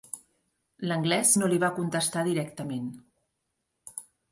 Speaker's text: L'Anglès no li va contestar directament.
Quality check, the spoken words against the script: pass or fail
pass